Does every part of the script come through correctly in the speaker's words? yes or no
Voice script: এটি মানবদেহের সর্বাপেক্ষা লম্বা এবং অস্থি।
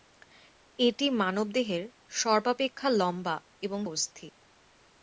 yes